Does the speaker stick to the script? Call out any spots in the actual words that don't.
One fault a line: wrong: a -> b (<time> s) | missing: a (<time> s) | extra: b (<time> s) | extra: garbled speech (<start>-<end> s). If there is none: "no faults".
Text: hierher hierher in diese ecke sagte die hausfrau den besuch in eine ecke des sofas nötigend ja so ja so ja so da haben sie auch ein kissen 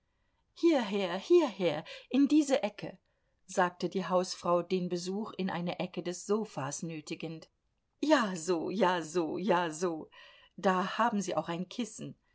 no faults